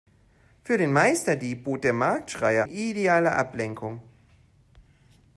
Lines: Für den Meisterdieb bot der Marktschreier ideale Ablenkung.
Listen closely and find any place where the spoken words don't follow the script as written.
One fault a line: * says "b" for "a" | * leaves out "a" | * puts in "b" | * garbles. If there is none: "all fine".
all fine